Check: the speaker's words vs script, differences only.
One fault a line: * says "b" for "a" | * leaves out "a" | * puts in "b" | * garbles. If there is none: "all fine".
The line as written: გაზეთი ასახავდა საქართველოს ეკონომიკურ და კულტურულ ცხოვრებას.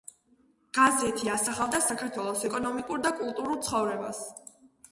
all fine